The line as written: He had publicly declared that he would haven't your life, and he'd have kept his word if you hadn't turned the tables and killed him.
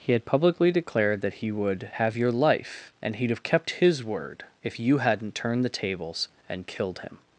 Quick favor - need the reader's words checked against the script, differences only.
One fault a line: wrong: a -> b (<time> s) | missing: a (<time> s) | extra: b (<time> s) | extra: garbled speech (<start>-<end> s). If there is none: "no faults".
wrong: haven't -> have (1.9 s)